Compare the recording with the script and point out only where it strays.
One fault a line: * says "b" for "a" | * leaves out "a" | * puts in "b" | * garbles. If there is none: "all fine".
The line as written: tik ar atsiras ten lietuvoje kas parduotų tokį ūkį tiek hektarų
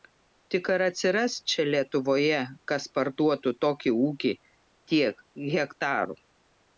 * says "čia" for "ten"